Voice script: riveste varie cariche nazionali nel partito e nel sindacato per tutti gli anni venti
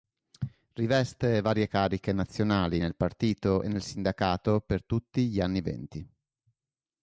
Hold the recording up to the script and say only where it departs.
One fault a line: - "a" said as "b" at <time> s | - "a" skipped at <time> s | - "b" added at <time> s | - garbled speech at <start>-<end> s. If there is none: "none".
none